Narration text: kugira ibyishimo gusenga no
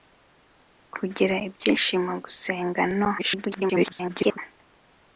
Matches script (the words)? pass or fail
fail